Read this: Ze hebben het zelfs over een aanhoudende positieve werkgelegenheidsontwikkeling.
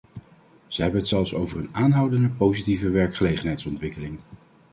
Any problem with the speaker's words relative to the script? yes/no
no